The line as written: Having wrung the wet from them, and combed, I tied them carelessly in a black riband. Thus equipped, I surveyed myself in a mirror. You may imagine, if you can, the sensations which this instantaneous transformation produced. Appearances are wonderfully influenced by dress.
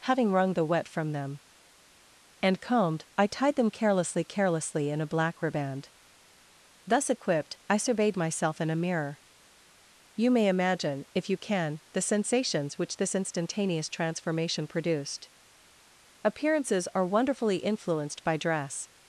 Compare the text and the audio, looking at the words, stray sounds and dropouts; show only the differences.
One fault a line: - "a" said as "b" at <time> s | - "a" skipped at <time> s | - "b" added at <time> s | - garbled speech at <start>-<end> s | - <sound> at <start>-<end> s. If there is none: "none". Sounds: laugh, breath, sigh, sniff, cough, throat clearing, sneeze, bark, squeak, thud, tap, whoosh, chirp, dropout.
- "carelessly" added at 4.2 s